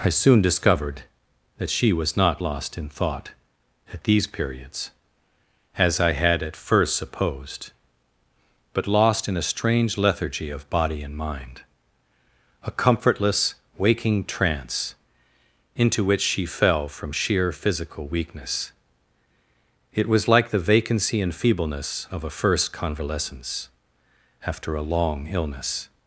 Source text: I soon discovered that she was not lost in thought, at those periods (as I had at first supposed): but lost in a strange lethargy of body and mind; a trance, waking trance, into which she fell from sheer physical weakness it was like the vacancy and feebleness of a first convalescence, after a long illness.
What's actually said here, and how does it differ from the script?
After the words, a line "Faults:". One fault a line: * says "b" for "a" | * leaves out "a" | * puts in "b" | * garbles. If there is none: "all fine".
I soon discovered that she was not lost in thought, at these periods (as I had at first supposed): but lost in a strange lethargy of body and mind; a comfortless, waking trance, into which she fell from sheer physical weakness it was like the vacancy and feebleness of a first convalescence, after a long illness.
Faults:
* says "these" for "those"
* says "comfortless" for "trance"